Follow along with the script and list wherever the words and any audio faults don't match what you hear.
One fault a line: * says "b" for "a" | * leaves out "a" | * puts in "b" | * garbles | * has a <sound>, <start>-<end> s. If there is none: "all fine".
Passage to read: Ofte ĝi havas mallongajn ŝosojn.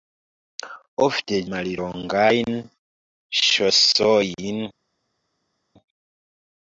* leaves out "ĝi havas"